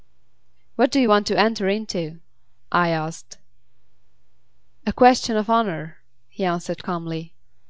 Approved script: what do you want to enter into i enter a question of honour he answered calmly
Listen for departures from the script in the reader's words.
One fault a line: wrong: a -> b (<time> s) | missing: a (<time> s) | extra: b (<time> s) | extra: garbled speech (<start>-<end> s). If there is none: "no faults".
wrong: enter -> asked (2.9 s)